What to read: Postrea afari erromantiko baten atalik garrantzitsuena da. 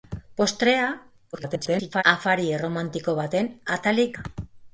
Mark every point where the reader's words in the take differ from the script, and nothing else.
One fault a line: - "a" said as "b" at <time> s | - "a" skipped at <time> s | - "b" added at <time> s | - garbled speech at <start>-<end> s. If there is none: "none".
- garbled speech at 1.3-2.0 s
- "garrantzitsuena" skipped at 4.2 s